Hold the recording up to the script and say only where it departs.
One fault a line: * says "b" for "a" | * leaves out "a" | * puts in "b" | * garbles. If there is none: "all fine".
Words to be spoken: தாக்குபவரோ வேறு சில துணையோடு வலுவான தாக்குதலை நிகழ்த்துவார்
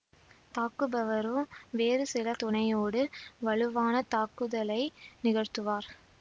all fine